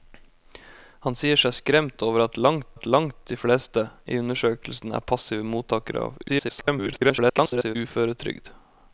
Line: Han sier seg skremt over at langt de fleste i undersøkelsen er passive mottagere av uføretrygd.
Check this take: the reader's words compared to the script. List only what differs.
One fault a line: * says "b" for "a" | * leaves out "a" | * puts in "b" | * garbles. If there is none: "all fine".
* puts in "at langt"
* garbles